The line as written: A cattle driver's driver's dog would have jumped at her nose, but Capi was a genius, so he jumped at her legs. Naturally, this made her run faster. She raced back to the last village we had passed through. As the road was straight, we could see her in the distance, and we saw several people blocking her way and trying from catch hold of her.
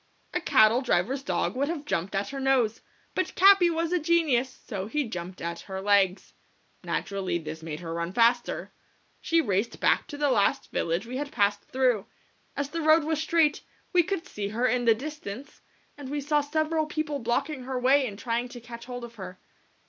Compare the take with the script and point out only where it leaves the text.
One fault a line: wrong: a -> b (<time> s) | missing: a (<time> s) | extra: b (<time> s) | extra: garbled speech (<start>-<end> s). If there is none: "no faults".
missing: driver's (1.2 s)
wrong: from -> to (18.5 s)